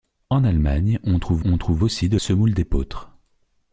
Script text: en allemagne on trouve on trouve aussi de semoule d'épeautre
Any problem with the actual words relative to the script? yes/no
no